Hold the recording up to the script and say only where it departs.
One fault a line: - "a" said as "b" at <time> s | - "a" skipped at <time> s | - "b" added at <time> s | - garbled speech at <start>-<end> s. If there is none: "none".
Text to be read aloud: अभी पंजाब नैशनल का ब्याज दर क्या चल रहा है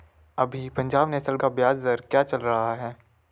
none